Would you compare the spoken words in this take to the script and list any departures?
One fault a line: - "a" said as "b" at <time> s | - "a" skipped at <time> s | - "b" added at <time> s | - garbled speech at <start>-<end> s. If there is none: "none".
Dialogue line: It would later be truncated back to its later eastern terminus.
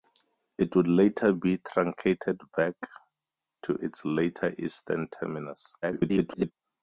- garbled speech at 5.8-6.5 s